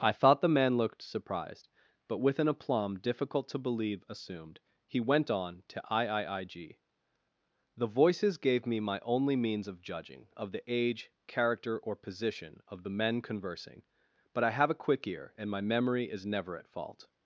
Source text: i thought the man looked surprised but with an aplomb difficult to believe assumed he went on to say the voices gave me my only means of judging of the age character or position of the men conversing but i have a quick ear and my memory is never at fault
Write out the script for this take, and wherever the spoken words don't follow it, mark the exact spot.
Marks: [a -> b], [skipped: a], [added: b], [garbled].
i thought the man looked surprised but with an aplomb difficult to believe assumed he went on to [say -> iiig] the voices gave me my only means of judging of the age character or position of the men conversing but i have a quick ear and my memory is never at fault